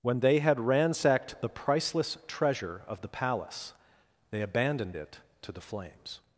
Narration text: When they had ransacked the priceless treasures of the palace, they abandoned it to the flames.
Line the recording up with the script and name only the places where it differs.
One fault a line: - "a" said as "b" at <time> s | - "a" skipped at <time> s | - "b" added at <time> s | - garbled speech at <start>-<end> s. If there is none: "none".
- "treasures" said as "treasure" at 2.3 s